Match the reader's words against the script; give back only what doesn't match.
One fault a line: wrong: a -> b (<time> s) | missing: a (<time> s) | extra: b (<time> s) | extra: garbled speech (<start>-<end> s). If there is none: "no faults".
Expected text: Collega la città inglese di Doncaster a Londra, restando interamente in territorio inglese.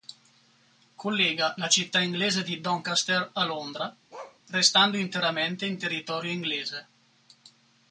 no faults